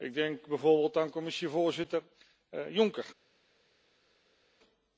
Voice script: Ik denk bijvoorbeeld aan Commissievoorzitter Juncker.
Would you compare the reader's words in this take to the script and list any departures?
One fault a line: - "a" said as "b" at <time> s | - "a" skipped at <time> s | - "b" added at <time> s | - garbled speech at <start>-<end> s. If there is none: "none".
none